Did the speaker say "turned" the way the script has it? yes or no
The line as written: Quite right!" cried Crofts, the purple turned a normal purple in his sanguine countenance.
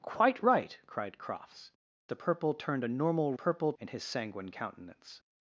yes